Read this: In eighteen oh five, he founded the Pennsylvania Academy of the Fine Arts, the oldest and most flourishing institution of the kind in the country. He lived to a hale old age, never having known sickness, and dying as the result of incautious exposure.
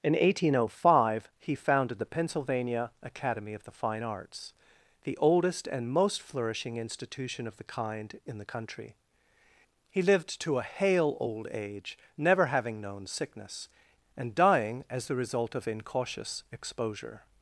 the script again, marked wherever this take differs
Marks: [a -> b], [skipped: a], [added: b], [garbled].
In eighteen oh five, he founded the Pennsylvania Academy of the Fine Arts, the oldest and most flourishing institution of the kind in the country. He lived to a hale old age, never having known sickness, and dying as the result of incautious exposure.